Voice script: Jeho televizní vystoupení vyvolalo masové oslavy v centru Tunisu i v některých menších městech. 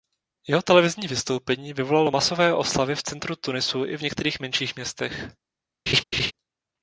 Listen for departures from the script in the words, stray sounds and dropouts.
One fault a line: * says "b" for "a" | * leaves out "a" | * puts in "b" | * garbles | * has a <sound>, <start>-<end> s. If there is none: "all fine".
* has a laugh, 5.9-6.3 s